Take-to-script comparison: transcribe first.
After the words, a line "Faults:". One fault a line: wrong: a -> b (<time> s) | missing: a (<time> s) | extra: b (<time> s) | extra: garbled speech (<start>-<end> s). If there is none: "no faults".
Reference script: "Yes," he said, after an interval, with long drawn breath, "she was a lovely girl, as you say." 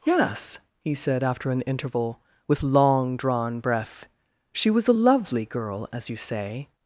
"Yes," he said, after an interval, with long drawn breath, "she was a lovely girl, as you say."
Faults:
no faults